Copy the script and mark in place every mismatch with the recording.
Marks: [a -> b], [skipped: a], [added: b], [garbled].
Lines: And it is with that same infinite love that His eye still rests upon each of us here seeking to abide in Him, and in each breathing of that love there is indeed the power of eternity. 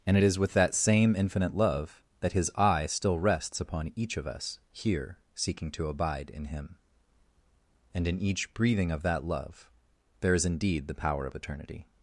And it is with that same infinite love that His eye still rests upon each of us here seeking to abide in Him, and in each breathing of that love there is indeed the power of eternity.